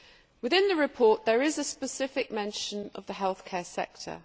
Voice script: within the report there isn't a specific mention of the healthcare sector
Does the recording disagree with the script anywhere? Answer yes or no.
yes